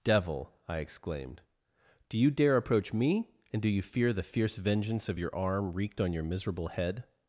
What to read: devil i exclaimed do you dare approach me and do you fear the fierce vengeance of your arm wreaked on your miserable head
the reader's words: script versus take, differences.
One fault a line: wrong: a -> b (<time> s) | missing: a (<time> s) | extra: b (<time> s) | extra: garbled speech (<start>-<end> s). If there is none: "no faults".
no faults